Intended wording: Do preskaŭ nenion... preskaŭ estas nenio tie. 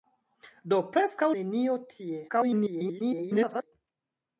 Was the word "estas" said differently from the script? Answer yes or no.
yes